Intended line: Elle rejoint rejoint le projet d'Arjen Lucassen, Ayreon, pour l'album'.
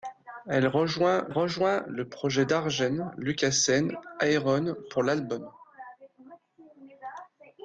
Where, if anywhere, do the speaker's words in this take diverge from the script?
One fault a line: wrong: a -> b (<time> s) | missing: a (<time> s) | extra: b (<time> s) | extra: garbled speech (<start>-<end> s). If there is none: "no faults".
no faults